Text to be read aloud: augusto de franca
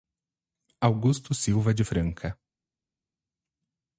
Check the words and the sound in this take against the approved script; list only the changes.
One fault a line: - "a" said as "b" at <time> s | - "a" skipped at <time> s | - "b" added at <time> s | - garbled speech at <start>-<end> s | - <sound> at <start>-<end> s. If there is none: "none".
- "silva" added at 1.4 s